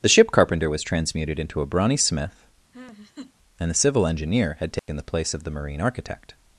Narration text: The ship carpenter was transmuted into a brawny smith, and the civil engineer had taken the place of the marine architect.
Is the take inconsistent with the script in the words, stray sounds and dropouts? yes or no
yes